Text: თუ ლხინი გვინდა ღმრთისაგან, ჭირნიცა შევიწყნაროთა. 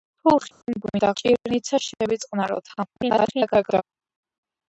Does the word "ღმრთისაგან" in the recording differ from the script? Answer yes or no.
yes